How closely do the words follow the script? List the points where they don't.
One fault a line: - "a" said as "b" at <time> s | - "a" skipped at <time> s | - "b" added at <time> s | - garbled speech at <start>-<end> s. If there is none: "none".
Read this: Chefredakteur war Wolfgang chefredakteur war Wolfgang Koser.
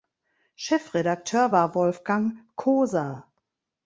- "chefredakteur war Wolfgang" skipped at 2.4 s